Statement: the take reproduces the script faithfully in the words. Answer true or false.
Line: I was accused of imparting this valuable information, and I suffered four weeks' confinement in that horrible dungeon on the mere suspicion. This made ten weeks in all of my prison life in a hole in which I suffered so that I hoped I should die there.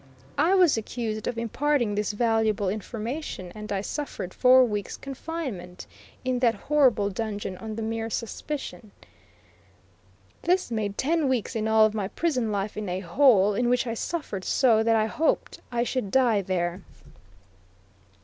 true